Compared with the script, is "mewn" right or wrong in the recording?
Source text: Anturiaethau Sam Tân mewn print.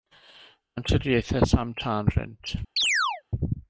wrong